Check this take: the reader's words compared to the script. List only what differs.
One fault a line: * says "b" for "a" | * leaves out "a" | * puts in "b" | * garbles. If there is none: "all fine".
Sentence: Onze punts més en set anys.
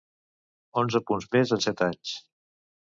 all fine